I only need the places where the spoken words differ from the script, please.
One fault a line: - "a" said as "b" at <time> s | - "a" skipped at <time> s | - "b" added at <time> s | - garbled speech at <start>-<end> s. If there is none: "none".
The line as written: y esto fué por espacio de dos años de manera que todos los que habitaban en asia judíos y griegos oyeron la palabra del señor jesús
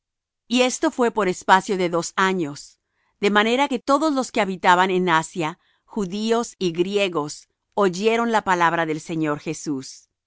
none